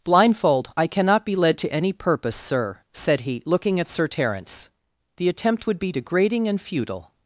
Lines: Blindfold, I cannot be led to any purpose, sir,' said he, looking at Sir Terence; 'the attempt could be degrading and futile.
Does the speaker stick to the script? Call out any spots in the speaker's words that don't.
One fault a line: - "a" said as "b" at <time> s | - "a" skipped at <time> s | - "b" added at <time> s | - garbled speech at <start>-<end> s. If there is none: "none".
- "could" said as "would" at 5.7 s